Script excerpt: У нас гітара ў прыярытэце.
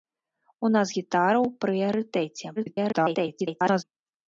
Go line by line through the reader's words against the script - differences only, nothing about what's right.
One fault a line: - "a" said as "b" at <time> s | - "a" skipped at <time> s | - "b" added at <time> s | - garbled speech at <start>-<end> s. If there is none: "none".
- garbled speech at 2.6-3.8 s